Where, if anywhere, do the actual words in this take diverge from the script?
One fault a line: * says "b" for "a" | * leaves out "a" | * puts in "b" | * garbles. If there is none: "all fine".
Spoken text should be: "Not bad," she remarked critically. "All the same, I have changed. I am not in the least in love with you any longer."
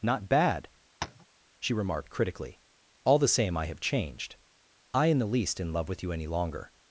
* leaves out "am not"